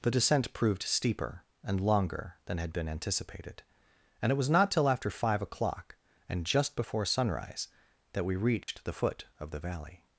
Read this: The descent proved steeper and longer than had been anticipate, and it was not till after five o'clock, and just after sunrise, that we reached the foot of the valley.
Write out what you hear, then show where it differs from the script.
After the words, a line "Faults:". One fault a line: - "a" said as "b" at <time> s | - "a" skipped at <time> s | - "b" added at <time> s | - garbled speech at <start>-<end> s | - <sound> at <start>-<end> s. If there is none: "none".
The descent proved steeper and longer than had been anticipated, and it was not till after five o'clock, and just before sunrise, that we reached the foot of the valley.
Faults:
- "anticipate" said as "anticipated" at 2.9 s
- "after" said as "before" at 6.7 s
- dropout at 8.6-8.7 s